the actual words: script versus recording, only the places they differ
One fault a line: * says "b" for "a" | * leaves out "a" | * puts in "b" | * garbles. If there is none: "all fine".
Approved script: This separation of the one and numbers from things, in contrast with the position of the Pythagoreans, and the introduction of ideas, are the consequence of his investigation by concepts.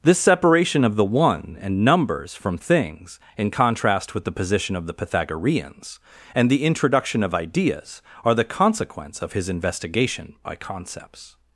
all fine